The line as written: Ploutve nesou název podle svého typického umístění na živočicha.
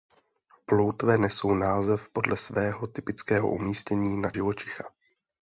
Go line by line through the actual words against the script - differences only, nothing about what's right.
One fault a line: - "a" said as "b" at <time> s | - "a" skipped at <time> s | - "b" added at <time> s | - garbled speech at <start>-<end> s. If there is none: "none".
none